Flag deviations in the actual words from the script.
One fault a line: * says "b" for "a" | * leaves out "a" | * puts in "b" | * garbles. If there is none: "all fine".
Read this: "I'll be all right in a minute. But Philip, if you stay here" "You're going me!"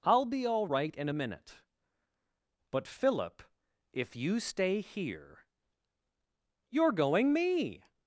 all fine